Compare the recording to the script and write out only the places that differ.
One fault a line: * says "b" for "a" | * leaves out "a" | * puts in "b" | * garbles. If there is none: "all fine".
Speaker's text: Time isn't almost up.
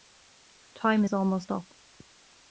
* says "is" for "isn't"